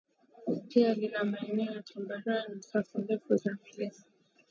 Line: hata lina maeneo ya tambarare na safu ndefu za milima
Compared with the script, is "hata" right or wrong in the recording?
wrong